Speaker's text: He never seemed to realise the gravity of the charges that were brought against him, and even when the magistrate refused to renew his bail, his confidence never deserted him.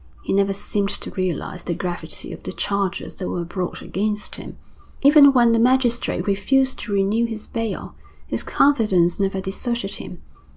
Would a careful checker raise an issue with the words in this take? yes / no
yes